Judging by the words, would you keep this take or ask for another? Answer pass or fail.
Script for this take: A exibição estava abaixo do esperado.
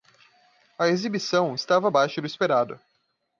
pass